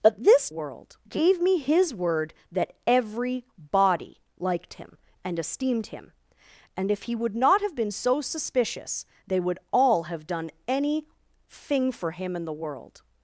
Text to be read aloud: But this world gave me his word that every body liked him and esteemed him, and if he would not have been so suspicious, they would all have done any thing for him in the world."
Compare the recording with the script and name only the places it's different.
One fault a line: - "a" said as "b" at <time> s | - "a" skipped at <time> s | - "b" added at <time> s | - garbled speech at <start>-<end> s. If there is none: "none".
none